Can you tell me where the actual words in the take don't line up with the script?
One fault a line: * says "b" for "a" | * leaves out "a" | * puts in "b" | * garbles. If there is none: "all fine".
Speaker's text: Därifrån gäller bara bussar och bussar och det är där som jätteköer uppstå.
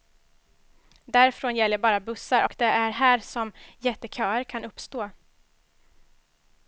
* leaves out "bussar och"
* says "här" for "där"
* puts in "kan"